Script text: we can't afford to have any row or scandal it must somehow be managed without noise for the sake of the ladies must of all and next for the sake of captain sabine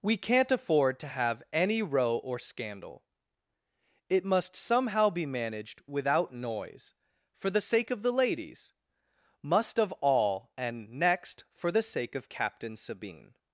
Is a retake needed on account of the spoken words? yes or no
no